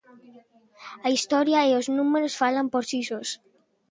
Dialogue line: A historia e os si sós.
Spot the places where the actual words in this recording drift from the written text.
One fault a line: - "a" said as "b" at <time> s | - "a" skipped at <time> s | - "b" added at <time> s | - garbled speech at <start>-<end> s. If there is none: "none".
- "números falan por" added at 2.0 s